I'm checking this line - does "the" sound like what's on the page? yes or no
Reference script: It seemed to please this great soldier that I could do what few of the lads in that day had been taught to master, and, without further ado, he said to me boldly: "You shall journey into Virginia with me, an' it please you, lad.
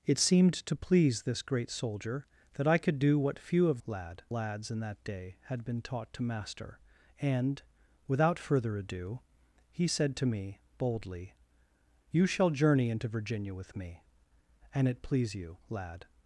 no